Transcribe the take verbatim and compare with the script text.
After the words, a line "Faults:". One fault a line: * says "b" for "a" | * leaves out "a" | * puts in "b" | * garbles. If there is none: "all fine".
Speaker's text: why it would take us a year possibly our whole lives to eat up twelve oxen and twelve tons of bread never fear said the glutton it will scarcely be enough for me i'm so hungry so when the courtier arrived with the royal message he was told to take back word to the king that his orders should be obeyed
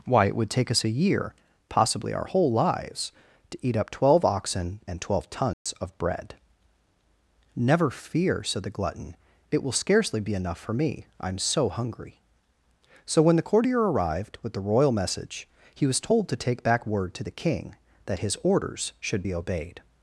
why it would take us a year possibly our whole lives to eat up twelve oxen and twelve tons of bread never fear said the glutton it will scarcely be enough for me i'm so hungry so when the courtier arrived with the royal message he was told to take back word to the king that his orders should be obeyed
Faults:
all fine